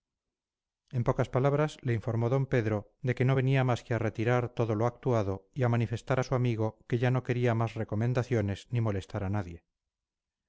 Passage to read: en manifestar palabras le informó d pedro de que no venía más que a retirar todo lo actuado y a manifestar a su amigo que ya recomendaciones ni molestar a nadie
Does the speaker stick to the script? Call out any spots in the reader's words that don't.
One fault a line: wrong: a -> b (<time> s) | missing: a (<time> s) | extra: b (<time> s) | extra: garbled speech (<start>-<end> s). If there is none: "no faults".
wrong: manifestar -> pocas (1.0 s)
extra: no quería más (7.1 s)